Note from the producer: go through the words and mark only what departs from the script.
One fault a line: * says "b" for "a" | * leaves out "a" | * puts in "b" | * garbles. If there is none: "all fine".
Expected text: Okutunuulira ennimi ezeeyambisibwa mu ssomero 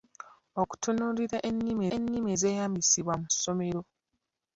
* puts in "ennimi"